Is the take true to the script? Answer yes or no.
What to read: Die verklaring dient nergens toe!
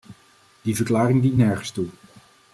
yes